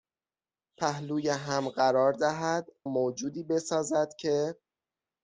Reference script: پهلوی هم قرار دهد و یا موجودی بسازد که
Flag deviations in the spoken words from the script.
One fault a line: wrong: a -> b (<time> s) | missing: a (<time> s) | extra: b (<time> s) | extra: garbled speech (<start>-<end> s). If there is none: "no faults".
missing: و یا (2.7 s)